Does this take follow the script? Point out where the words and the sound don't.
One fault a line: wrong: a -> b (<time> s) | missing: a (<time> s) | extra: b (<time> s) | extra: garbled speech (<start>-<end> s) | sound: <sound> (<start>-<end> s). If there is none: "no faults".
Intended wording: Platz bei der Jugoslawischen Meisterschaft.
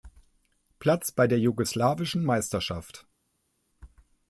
no faults